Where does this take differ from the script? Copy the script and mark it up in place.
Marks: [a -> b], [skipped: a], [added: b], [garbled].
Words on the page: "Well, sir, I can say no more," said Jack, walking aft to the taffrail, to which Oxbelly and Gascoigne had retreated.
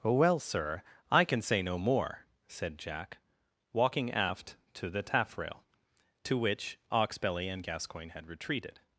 "Well, sir, I can say no more," said Jack, walking aft to the taffrail, to which Oxbelly and Gascoigne had retreated.